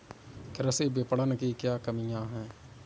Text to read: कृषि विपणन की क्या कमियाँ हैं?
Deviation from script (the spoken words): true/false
false